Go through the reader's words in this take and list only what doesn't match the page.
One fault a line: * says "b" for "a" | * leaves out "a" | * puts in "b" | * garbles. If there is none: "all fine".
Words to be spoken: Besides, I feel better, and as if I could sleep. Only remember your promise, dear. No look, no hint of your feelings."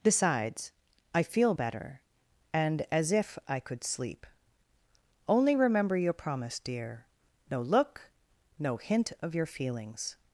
all fine